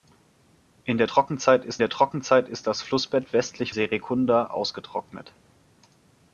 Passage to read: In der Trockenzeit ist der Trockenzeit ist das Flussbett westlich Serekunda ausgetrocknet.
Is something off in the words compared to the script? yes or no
no